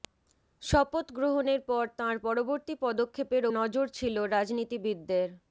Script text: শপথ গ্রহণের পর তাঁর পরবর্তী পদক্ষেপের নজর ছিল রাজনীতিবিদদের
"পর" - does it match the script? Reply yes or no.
yes